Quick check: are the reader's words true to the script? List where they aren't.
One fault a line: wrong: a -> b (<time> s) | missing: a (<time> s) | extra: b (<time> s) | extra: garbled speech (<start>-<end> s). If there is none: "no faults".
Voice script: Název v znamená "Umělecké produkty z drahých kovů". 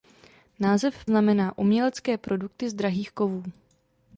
no faults